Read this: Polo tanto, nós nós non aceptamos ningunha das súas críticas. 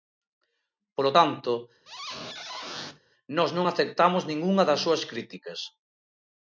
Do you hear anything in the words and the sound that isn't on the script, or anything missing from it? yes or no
yes